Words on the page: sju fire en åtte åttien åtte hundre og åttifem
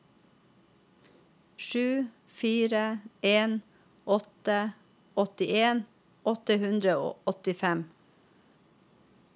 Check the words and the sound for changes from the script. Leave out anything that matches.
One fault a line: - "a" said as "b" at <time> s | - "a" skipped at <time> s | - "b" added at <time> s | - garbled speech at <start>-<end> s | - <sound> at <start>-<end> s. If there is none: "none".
none